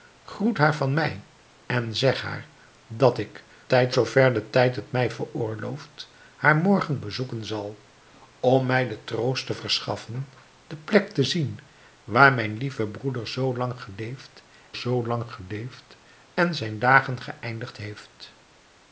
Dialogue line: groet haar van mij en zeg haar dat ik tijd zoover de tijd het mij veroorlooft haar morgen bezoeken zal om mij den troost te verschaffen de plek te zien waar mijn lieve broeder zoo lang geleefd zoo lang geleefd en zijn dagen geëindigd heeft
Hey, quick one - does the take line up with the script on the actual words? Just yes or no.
yes